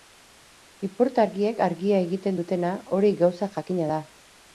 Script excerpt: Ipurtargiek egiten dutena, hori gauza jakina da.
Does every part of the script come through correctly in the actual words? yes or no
no